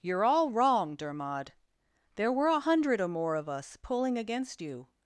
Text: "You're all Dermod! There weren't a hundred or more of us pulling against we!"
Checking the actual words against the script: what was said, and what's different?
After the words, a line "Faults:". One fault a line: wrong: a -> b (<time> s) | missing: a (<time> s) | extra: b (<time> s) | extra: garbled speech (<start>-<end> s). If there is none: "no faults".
"You're all wrong, Dermod! There were a hundred or more of us pulling against you!"
Faults:
extra: wrong (0.5 s)
wrong: weren't -> were (2.3 s)
wrong: we -> you (4.6 s)